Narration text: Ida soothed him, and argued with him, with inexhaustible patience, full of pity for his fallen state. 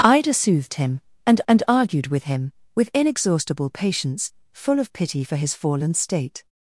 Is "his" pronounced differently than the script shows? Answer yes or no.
no